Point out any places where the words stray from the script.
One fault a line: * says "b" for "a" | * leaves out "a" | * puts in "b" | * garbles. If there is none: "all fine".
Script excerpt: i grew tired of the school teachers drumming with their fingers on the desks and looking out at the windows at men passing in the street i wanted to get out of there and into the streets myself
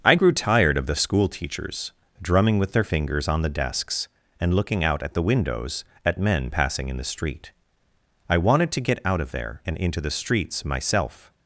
all fine